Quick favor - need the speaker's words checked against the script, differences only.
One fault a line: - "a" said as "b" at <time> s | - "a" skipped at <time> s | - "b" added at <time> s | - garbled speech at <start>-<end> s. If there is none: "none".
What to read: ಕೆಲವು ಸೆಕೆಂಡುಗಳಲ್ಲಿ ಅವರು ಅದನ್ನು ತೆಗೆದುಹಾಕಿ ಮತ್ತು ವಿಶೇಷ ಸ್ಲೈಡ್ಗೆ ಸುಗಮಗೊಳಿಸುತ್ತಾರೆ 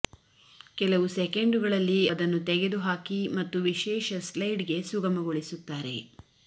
- "ಅವರು" skipped at 2.0 s